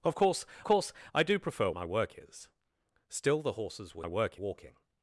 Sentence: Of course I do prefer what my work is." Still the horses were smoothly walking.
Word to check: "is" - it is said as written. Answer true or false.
true